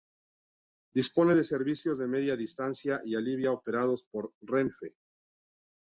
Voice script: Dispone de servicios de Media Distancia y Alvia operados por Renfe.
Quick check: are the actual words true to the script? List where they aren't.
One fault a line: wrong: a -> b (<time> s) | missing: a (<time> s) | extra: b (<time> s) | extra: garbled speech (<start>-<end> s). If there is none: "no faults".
no faults